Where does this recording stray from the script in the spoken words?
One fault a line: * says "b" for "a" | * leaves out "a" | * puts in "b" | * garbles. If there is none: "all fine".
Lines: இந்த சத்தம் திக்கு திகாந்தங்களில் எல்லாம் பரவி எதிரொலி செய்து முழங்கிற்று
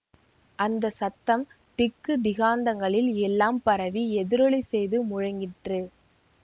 * says "அந்த" for "இந்த"